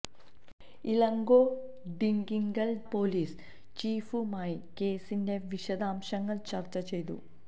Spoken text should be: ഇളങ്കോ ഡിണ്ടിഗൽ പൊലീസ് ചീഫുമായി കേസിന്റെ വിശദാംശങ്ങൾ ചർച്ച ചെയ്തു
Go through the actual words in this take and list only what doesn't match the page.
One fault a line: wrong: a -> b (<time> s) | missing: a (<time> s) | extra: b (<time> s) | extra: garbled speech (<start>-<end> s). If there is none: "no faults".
no faults